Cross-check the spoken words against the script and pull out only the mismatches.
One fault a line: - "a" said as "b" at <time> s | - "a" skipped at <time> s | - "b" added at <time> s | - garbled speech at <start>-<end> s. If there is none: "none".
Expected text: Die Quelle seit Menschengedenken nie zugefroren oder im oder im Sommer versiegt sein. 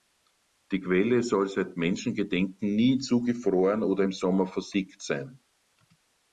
- "soll" added at 1.2 s
- "oder im" skipped at 4.1 s